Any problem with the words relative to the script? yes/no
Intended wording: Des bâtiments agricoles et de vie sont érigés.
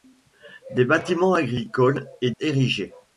yes